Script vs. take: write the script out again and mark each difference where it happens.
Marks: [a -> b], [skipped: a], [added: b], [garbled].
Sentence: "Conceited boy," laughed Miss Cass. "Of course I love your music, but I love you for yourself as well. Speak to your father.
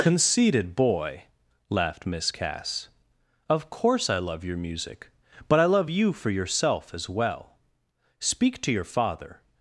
"Conceited boy," laughed Miss Cass. "Of course I love your music, but I love you for yourself as well. Speak to your father.